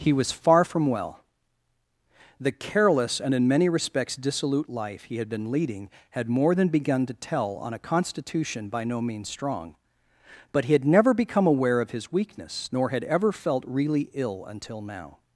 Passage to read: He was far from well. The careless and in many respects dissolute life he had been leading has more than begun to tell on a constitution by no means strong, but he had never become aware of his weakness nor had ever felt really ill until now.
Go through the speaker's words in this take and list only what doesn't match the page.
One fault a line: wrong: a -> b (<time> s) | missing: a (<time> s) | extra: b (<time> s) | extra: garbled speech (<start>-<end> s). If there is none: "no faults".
wrong: has -> had (6.1 s)